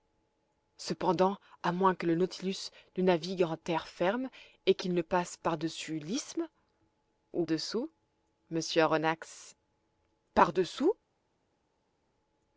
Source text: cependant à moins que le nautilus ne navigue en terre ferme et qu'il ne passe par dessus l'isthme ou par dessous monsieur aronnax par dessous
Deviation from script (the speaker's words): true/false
true